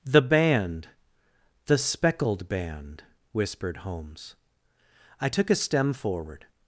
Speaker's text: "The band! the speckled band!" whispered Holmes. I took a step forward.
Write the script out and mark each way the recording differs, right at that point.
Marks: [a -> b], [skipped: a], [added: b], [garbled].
"The band! the speckled band!" whispered Holmes. I took a [step -> stem] forward.